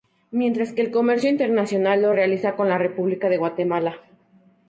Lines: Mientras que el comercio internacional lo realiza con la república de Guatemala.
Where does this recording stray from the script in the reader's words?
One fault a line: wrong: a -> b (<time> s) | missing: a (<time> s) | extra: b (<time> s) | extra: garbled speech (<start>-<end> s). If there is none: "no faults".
no faults